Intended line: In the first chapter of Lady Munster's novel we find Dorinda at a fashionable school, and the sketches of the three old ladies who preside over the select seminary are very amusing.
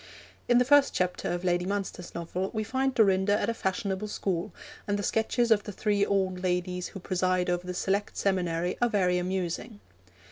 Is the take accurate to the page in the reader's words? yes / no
yes